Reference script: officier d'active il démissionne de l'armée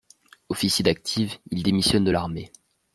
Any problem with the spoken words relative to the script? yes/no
no